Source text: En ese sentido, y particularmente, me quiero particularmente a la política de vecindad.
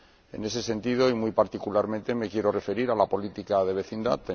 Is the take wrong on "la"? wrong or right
right